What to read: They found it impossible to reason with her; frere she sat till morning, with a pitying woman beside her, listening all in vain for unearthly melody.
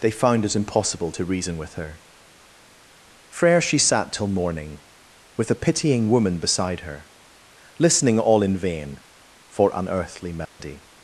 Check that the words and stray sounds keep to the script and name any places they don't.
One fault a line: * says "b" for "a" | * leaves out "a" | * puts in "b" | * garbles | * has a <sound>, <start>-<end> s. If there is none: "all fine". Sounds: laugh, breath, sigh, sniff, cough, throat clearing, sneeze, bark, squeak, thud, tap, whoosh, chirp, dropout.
* has a dropout, 10.5-10.6 s